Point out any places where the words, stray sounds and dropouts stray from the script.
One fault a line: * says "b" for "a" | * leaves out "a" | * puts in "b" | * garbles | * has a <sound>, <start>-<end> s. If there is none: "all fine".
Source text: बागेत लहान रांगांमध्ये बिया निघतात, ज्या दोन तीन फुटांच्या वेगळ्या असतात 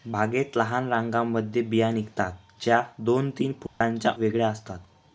* has a dropout, 3.7-3.8 s